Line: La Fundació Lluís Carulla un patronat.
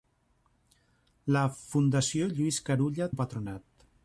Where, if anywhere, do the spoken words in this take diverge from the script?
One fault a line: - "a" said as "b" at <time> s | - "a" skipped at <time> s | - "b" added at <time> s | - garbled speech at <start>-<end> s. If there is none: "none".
none